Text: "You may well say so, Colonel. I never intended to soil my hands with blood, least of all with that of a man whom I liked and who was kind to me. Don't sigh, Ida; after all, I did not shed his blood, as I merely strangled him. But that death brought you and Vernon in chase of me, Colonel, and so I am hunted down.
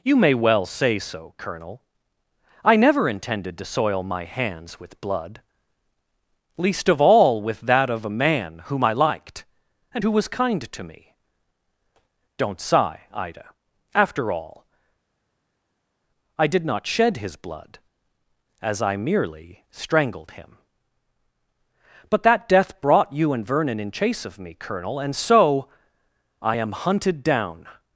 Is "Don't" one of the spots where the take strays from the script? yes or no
no